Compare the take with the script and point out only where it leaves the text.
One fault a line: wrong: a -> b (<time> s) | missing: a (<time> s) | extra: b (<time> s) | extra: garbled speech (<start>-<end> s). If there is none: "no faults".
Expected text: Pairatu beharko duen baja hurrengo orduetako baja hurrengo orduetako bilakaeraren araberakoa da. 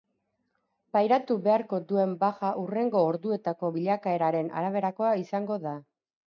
missing: baja hurrengo orduetako (3.7 s)
extra: izango (5.2 s)